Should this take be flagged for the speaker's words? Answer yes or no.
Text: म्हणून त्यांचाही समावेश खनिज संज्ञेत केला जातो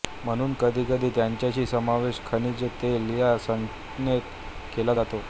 yes